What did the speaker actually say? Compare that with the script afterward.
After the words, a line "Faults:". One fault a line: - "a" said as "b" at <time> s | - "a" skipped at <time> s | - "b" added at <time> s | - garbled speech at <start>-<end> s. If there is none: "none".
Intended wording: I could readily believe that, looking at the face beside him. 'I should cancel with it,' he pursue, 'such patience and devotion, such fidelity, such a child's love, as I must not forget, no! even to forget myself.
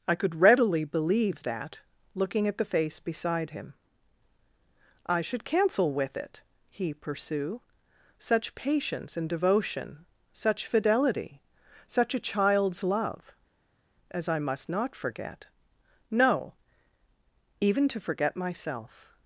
I could readily believe that, looking at the face beside him. 'I should cancel with it,' he pursue, 'such patience and devotion, such fidelity, such a child's love, as I must not forget, no! even to forget myself.
Faults:
none